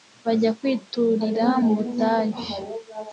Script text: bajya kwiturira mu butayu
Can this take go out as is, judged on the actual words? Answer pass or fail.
pass